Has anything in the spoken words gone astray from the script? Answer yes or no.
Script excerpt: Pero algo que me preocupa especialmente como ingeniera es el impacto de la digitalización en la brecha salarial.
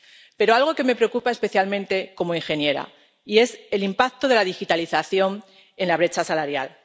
no